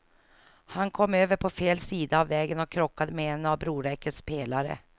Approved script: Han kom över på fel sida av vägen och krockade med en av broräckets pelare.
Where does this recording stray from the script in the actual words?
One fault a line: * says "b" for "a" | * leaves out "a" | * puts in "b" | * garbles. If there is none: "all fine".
all fine